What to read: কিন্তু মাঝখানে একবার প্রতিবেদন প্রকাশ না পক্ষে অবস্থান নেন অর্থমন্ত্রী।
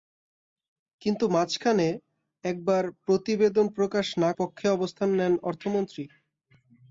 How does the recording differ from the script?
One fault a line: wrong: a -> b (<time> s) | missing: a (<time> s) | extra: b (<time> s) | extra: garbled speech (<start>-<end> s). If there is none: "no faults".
no faults